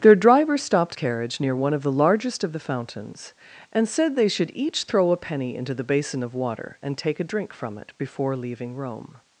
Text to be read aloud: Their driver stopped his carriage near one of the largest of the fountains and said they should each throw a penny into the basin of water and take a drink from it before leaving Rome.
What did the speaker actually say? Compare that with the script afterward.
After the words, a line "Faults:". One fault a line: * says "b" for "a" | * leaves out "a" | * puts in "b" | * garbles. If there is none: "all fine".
Their driver stopped carriage near one of the largest of the fountains and said they should each throw a penny into the basin of water and take a drink from it before leaving Rome.
Faults:
* leaves out "his"